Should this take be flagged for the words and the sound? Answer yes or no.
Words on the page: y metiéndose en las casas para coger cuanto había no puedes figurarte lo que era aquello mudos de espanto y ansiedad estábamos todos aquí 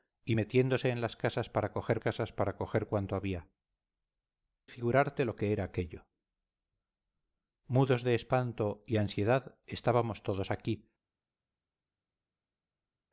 yes